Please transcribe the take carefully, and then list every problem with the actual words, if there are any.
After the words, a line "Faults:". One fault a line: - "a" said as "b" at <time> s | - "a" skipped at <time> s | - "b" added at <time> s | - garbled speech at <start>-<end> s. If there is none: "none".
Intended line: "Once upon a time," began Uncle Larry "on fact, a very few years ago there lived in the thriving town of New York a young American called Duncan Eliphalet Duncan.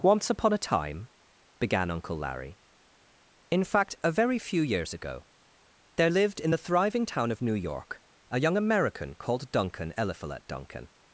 "Once upon a time," began Uncle Larry "in fact, a very few years ago there lived in the thriving town of New York a young American called Duncan Eliphalet Duncan.
Faults:
- "on" said as "in" at 3.5 s